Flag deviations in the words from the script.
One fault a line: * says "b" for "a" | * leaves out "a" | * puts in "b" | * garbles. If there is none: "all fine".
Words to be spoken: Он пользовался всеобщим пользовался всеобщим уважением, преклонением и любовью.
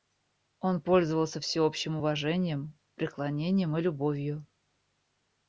* leaves out "пользовался всеобщим"